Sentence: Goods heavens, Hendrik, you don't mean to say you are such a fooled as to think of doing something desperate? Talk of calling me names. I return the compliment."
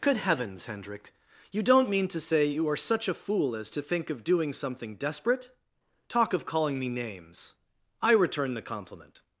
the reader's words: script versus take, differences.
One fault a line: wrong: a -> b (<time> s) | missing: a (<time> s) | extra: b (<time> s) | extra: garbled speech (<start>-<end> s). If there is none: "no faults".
wrong: Goods -> Good (0.0 s)
wrong: fooled -> fool (3.1 s)